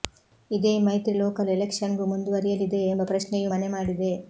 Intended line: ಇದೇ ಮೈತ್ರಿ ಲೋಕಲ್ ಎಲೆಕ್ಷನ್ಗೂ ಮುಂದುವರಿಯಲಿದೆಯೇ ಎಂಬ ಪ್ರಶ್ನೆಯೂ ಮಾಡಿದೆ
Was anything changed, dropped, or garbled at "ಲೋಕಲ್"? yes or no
no